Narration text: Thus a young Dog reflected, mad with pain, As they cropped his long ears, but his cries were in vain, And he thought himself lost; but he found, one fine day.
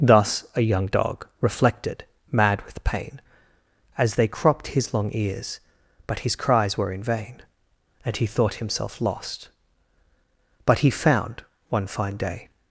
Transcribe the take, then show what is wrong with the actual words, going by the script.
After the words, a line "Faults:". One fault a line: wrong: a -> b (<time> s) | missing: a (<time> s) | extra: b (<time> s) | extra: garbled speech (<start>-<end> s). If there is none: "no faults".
Thus a young Dog reflected, mad with pain, As they cropped his long ears, but his cries were in vain, And he thought himself lost; but he found, one fine day.
Faults:
no faults